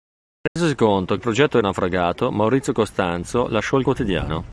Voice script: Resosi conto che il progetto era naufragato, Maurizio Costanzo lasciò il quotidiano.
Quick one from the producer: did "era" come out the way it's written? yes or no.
no